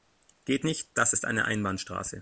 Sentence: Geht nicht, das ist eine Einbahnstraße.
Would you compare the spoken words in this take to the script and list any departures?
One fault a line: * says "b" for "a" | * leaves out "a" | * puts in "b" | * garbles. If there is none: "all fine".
all fine